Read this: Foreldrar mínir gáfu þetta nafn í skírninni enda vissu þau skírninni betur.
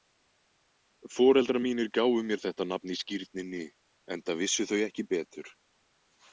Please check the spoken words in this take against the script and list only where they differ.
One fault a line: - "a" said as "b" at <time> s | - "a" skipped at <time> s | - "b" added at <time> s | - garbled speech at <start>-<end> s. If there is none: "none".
- "mér" added at 2.3 s
- "skírninni" said as "ekki" at 4.9 s